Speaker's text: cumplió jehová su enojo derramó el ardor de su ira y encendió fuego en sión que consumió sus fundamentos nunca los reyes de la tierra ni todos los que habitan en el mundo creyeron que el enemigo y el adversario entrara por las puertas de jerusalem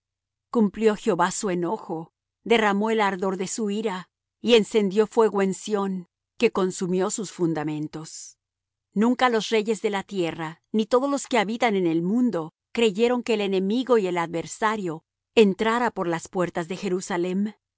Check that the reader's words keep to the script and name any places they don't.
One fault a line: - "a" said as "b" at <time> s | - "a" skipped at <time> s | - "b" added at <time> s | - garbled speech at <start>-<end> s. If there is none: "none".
none